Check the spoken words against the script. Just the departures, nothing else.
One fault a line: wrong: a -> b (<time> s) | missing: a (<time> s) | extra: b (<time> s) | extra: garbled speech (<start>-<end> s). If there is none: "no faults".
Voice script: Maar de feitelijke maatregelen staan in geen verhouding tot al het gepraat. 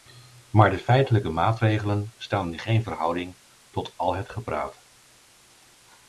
no faults